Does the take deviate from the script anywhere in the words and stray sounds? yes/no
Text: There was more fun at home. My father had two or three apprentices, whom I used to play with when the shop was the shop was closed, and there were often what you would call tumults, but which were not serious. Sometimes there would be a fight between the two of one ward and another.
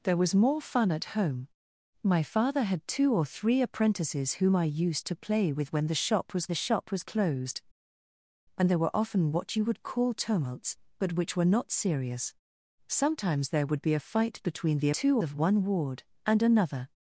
no